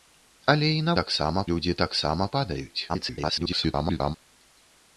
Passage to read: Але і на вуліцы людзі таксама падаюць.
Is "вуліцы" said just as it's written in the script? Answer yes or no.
no